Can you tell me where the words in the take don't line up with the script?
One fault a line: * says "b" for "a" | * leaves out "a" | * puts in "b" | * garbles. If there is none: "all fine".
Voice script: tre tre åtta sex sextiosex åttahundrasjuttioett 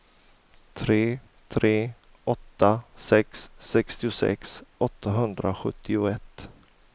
all fine